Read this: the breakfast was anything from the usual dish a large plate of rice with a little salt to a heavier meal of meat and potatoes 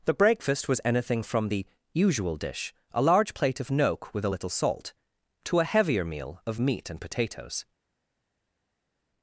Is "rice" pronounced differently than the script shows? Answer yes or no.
yes